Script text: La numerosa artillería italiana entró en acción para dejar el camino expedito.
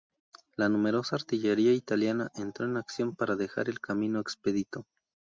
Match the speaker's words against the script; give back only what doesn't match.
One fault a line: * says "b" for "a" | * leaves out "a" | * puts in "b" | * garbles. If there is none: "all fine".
all fine